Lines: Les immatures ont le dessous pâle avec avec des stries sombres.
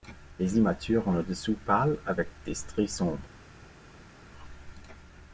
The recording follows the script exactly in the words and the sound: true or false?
false